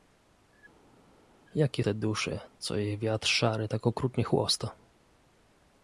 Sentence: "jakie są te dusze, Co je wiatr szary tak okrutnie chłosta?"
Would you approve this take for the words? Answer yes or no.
no